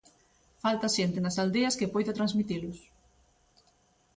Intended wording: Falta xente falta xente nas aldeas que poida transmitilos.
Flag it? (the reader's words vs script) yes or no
yes